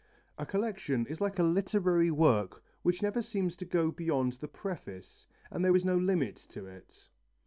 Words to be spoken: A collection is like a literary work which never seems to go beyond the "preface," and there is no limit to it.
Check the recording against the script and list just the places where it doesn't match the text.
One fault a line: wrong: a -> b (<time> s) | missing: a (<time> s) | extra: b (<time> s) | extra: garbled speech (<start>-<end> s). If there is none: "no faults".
no faults